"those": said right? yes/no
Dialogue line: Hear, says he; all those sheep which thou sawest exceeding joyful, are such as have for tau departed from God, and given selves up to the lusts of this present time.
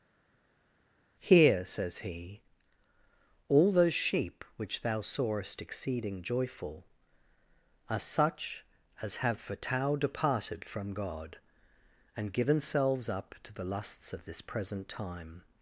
yes